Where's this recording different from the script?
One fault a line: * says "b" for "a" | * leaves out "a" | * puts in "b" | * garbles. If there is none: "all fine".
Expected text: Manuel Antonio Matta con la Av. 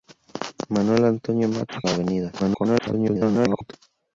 * leaves out "con"
* garbles